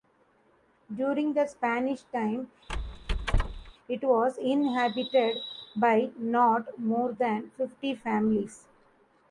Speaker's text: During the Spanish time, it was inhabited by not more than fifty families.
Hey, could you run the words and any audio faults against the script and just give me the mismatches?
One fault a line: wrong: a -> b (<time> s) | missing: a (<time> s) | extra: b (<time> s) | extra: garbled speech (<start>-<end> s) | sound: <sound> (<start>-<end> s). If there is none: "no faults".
sound: squeak (2.7-3.7 s)